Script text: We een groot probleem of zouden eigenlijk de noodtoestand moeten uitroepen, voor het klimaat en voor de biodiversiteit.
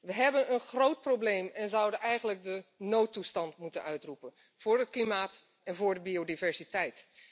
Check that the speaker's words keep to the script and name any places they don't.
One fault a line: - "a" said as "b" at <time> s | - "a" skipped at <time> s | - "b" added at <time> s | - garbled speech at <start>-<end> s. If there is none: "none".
- "hebben" added at 0.1 s
- "of" said as "en" at 1.5 s